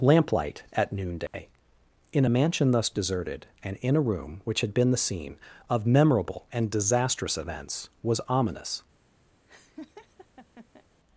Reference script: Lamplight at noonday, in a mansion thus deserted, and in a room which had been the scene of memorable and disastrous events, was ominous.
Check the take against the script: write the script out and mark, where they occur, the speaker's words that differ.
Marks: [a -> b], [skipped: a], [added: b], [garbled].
Lamplight at noonday, in a mansion thus deserted, and in a room which had been the scene of memorable and disastrous events, was ominous.